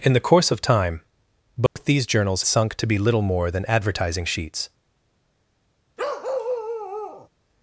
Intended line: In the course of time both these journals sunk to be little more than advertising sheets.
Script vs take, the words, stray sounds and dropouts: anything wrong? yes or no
yes